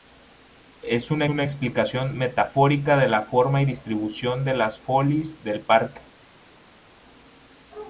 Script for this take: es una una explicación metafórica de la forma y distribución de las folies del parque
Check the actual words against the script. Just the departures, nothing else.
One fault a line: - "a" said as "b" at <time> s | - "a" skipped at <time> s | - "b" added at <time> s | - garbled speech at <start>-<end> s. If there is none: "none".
none